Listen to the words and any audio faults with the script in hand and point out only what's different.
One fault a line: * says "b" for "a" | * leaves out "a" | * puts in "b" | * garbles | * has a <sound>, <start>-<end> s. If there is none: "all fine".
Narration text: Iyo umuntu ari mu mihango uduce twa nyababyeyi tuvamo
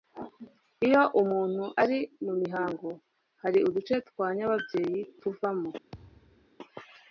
* puts in "hari"
* has a thud, 5.9-6.5 s